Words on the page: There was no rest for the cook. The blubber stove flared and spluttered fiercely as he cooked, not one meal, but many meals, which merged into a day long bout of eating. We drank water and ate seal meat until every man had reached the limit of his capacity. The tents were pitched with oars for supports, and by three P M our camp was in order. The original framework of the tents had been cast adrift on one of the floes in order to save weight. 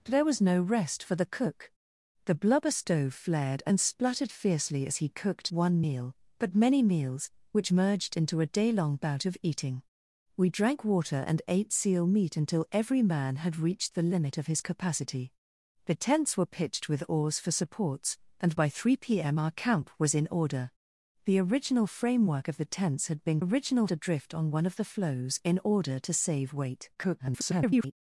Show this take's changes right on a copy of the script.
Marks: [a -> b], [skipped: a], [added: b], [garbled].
There was no rest for the cook. The blubber stove flared and spluttered fiercely as he cooked, [skipped: not] one meal, but many meals, which merged into a day long bout of eating. We drank water and ate seal meat until every man had reached the limit of his capacity. The tents were pitched with oars for supports, and by three P M our camp was in order. The original framework of the tents had been [cast -> original] adrift on one of the floes in order to save weight. [garbled]